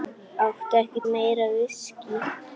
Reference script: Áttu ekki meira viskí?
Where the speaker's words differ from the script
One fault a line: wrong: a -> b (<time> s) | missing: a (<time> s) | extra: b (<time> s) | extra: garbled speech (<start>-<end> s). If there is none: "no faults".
no faults